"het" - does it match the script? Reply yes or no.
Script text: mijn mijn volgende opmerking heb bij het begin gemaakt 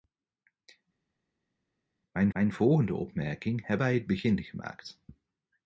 yes